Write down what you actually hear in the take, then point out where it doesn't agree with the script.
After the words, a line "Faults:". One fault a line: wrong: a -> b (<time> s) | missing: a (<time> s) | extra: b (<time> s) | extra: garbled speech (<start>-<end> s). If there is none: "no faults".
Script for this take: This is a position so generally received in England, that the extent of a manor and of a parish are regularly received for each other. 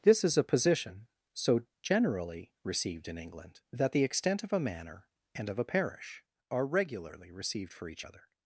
This is a position so generally received in England, that the extent of a manor and of a parish are regularly received for each other.
Faults:
no faults